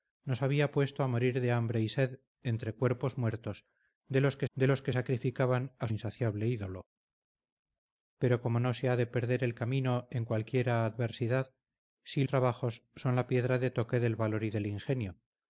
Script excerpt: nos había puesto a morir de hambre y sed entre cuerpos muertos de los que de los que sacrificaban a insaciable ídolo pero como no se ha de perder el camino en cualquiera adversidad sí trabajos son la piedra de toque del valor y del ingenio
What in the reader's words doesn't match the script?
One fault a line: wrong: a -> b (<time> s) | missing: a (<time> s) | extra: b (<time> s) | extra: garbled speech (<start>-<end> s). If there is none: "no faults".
no faults